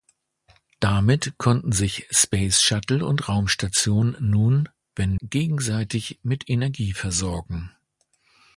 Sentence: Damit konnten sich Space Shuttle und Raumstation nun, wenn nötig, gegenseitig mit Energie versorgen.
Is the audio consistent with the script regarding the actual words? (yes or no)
no